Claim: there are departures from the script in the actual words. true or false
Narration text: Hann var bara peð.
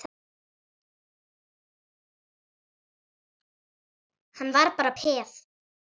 false